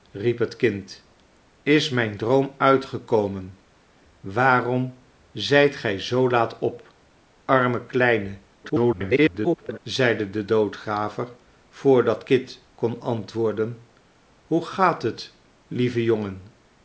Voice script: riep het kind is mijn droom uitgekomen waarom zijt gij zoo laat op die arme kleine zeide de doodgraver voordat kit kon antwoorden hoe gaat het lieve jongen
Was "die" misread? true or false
true